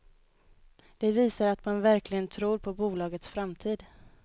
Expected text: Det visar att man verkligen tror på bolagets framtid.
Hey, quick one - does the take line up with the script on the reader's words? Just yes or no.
yes